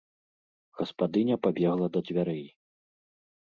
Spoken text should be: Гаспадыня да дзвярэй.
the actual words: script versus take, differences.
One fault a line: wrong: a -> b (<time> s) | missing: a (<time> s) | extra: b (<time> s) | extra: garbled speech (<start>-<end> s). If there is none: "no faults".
extra: пабегла (1.4 s)